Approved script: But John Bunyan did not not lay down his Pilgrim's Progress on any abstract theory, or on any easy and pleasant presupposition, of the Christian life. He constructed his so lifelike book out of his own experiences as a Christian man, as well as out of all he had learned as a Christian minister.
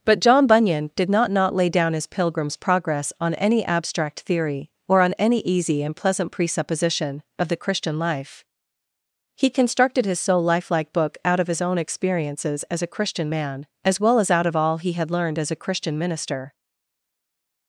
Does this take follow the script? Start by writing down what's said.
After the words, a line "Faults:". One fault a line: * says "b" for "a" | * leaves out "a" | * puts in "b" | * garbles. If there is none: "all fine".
But John Bunyan did not not lay down his Pilgrim's Progress on any abstract theory, or on any easy and pleasant presupposition, of the Christian life. He constructed his so lifelike book out of his own experiences as a Christian man, as well as out of all he had learned as a Christian minister.
Faults:
all fine